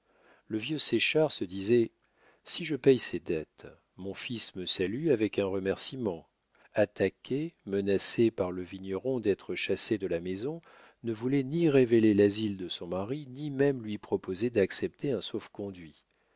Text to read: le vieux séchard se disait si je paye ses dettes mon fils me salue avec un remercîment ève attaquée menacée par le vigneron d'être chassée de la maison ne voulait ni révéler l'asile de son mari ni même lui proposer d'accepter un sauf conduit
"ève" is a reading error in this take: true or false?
true